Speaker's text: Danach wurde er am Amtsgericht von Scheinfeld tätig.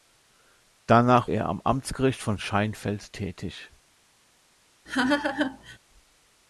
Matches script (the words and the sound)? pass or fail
fail